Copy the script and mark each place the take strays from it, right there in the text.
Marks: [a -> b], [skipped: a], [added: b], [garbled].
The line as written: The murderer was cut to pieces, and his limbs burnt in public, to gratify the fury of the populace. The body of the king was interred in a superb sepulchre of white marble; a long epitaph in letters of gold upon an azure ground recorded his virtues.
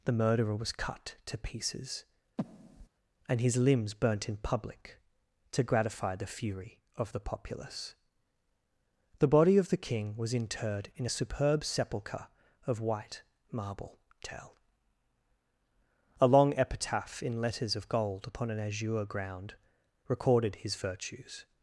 The murderer was cut to pieces, and his limbs burnt in public, to gratify the fury of the populace. The body of the king was interred in a superb sepulchre of white marble; [added: tell] a long epitaph in letters of gold upon an azure ground recorded his virtues.